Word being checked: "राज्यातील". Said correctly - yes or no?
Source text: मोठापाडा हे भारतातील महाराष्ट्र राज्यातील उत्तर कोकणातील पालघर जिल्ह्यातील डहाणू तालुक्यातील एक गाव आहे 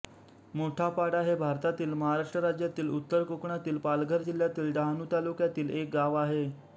yes